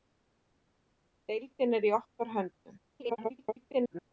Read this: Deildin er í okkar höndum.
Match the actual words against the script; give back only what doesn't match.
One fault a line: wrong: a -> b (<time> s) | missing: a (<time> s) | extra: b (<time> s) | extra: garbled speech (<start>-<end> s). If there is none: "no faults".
extra: garbled speech (2.9-4.1 s)